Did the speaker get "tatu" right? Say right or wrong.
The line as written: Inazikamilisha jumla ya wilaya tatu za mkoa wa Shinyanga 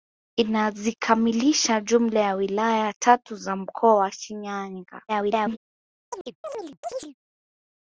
right